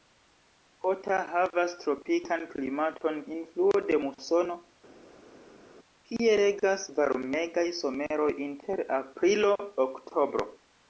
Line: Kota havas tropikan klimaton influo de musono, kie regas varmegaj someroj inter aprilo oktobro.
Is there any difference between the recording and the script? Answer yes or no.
no